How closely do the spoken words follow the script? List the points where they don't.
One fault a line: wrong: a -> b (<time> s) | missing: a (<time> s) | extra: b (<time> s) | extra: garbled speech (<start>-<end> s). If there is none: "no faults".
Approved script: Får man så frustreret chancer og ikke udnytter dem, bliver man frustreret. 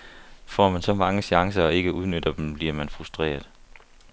wrong: frustreret -> mange (0.9 s)